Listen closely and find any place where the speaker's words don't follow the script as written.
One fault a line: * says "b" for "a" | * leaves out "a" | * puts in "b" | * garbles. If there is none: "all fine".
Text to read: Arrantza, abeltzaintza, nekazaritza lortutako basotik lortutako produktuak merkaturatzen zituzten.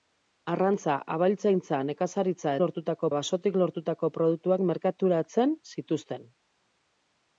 all fine